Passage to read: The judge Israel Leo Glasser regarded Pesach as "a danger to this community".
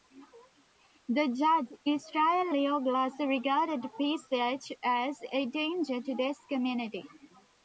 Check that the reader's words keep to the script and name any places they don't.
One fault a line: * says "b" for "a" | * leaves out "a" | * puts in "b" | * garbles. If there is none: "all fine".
all fine